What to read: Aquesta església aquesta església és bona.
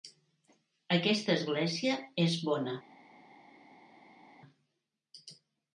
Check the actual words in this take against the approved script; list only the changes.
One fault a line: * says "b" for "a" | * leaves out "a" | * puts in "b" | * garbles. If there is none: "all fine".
* leaves out "aquesta església"